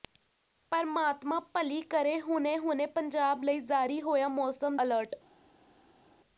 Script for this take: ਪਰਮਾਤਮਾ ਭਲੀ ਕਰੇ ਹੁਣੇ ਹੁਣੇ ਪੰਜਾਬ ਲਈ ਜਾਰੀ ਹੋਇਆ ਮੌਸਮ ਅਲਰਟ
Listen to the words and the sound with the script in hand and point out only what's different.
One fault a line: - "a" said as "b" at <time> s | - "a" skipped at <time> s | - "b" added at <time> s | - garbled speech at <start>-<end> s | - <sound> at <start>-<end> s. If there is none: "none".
none